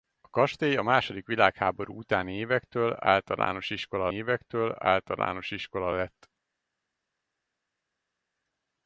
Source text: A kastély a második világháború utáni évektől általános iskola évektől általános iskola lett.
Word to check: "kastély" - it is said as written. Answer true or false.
true